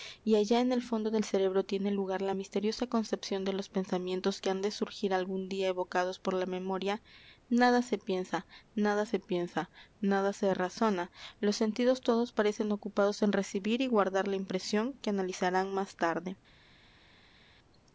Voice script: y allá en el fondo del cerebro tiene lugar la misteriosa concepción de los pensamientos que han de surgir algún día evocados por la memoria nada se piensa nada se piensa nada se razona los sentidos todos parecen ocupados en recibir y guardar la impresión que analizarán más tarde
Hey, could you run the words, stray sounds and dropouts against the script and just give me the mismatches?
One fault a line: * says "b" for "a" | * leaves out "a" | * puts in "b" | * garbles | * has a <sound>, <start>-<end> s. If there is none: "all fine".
all fine